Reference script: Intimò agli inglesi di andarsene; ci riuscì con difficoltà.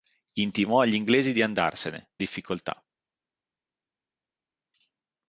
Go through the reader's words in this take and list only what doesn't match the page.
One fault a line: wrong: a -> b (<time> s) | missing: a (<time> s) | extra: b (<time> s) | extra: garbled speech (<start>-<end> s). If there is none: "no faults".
missing: ci riuscì con (2.1 s)